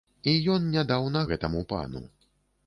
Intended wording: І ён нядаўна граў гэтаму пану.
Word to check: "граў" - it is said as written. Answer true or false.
false